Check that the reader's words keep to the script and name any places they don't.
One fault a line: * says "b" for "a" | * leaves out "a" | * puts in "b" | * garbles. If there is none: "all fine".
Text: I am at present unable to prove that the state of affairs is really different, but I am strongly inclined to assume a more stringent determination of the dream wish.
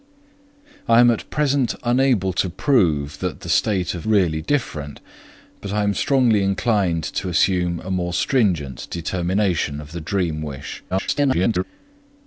* leaves out "affairs is"
* garbles